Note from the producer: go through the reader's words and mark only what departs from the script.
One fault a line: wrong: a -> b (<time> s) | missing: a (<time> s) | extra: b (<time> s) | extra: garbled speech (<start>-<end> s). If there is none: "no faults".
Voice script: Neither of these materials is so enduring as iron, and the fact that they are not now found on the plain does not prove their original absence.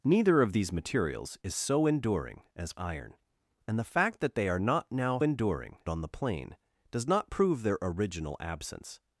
wrong: found -> enduring (5.2 s)